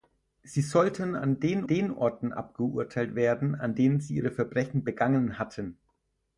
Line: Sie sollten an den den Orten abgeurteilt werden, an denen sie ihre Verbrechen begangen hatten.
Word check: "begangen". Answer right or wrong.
right